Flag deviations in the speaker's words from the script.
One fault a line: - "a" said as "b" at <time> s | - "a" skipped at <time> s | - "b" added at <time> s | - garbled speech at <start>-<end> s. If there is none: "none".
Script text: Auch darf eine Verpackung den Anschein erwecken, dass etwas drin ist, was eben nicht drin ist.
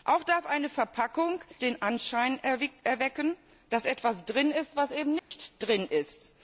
none